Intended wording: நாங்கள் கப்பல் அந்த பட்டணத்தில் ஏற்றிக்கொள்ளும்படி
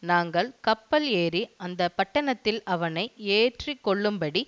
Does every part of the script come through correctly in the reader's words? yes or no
no